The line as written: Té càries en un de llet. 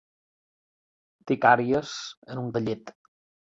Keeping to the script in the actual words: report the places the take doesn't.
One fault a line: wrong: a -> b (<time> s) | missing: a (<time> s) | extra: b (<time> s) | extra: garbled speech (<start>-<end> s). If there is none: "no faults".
no faults